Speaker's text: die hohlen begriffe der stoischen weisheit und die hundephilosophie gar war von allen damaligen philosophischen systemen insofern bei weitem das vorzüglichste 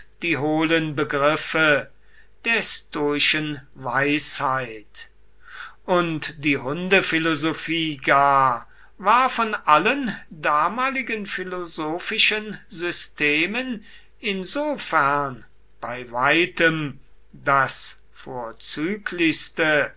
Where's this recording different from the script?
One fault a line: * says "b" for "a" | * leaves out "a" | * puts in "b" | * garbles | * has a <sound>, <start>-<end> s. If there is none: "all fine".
all fine